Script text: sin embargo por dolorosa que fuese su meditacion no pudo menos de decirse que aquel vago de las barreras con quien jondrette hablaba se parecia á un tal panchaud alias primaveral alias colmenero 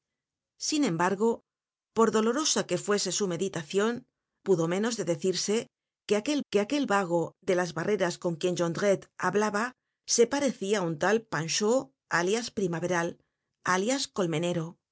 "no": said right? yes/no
no